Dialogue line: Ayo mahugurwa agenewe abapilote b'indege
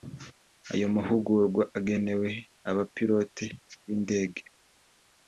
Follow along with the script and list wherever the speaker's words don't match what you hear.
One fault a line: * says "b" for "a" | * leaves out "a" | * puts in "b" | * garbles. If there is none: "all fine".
all fine